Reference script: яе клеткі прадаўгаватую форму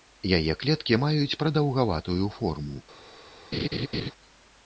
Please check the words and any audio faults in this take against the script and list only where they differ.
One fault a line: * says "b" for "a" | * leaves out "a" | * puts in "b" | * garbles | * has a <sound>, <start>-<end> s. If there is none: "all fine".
* puts in "маюць"
* has a laugh, 3.5-4.1 s